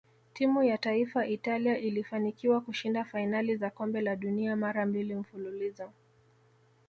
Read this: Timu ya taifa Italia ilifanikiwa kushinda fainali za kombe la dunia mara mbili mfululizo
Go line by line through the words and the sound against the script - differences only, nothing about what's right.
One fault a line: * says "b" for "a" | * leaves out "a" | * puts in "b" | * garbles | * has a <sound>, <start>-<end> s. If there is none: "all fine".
all fine